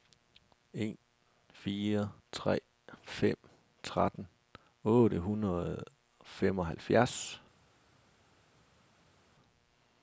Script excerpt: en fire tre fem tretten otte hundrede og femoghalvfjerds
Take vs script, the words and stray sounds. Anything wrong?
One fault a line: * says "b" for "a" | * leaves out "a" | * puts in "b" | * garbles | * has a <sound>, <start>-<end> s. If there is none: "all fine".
all fine